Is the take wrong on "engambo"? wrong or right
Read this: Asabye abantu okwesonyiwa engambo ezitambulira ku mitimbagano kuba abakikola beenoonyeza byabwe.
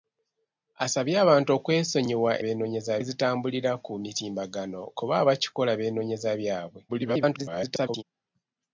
wrong